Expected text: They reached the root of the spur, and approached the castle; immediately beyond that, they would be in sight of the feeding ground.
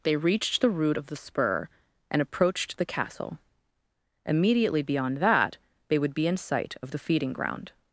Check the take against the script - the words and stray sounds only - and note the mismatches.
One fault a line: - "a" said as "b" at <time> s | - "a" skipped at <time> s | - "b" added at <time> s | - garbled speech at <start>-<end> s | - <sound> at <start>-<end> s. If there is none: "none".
none